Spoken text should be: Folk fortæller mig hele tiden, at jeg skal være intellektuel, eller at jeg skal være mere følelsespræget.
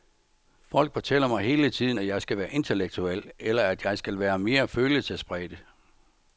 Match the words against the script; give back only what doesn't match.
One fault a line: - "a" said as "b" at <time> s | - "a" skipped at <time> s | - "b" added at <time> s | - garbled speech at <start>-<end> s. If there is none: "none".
none